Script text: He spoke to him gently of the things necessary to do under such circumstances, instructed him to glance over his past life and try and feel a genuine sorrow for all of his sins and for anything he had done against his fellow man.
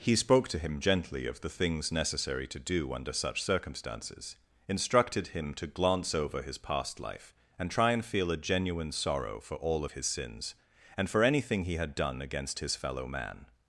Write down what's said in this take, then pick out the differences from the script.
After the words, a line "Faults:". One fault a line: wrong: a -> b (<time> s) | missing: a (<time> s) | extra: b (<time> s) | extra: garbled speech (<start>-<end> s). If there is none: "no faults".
He spoke to him gently of the things necessary to do under such circumstances, instructed him to glance over his past life and try and feel a genuine sorrow for all of his sins and for anything he had done against his fellow man.
Faults:
no faults